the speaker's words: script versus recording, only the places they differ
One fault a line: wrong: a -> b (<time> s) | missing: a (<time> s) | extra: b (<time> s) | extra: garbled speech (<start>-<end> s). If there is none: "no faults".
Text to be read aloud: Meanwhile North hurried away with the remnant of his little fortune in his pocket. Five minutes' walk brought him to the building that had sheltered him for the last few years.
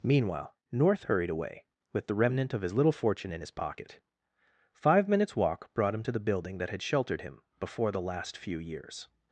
wrong: for -> before (7.6 s)